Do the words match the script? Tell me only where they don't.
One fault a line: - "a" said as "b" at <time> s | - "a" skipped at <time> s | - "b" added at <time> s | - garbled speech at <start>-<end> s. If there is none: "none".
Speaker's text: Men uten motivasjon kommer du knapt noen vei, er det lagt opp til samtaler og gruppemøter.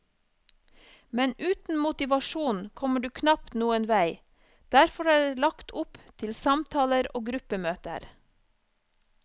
- "derfor" added at 4.8 s